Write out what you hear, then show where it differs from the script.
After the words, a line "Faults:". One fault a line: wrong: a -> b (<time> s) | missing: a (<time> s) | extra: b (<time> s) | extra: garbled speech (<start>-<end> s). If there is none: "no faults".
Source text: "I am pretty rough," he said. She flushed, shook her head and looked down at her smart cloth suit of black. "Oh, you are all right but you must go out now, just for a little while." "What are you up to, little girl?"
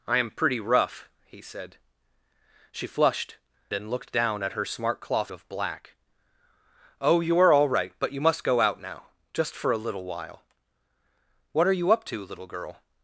"I am pretty rough," he said. She flushed, and looked down at her smart cloth of black. "Oh, you are all right but you must go out now, just for a little while." "What are you up to, little girl?"
Faults:
missing: shook her head (3.4 s)
missing: suit (5.3 s)